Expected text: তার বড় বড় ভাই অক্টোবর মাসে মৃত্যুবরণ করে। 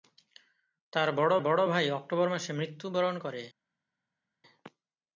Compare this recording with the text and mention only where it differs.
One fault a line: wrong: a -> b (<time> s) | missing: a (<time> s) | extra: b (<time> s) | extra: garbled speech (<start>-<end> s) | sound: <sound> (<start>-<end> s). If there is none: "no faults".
no faults